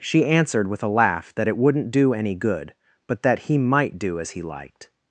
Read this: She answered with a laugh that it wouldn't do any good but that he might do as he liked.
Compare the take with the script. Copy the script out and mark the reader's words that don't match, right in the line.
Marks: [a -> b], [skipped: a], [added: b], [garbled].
She answered with a laugh that it wouldn't do any good but that he might do as he liked.